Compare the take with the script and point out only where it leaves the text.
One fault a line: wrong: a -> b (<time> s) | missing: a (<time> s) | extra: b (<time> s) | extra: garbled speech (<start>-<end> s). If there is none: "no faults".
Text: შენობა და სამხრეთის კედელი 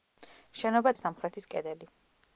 no faults